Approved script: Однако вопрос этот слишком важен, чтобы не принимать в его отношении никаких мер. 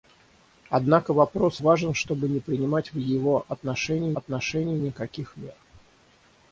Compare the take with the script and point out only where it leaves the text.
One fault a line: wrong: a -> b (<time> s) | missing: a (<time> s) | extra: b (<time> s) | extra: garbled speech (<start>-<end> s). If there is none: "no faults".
missing: этот слишком (1.6 s)
extra: отношении (4.1 s)